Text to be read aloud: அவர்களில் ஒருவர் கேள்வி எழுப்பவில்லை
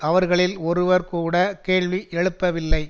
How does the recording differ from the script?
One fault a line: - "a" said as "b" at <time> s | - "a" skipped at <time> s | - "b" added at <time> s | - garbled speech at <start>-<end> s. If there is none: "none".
- "கூட" added at 1.1 s